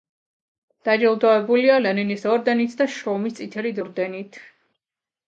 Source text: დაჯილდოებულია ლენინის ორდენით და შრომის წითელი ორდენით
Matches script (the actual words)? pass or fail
pass